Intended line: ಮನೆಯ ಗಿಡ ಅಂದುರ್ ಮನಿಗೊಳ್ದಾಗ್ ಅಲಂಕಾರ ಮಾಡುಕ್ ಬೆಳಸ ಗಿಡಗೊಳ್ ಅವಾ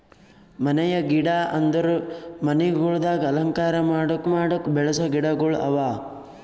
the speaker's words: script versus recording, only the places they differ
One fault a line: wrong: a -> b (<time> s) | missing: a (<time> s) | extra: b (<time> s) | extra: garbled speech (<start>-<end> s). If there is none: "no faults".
extra: ಮಾಡುಕ್ (4.3 s)